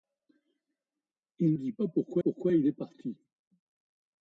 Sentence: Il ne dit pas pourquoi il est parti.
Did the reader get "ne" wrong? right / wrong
wrong